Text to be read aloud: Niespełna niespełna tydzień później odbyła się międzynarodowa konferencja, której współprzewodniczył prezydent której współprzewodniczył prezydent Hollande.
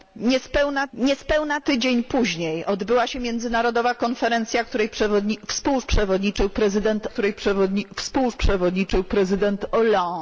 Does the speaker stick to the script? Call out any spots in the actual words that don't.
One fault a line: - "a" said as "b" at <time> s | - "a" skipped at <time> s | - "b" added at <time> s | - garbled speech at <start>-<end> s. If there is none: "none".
none